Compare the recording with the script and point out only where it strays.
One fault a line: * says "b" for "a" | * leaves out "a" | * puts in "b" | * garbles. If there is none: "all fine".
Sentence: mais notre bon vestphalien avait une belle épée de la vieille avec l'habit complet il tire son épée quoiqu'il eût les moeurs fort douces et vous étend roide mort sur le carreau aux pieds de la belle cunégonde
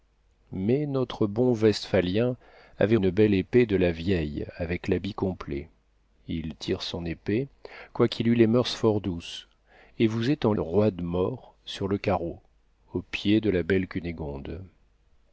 all fine